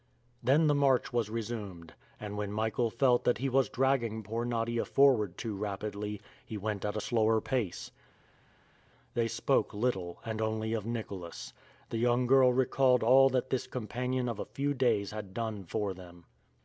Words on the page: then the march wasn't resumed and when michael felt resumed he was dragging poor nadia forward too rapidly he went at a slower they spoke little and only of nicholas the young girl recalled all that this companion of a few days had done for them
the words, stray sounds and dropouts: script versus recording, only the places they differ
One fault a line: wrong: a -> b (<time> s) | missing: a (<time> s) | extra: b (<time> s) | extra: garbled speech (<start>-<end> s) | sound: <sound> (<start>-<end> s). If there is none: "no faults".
wrong: wasn't -> was (1.1 s)
wrong: resumed -> that (3.2 s)
extra: pace (7.4 s)